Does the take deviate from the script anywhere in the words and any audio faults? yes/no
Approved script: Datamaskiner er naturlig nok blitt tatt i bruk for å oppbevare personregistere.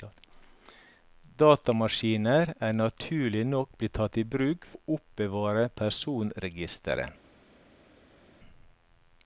yes